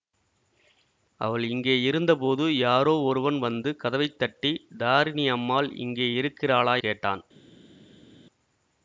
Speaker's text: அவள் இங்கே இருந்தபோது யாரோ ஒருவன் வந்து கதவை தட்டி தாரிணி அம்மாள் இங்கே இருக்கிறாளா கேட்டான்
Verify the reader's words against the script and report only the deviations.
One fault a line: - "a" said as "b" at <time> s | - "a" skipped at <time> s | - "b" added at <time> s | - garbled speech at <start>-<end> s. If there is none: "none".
none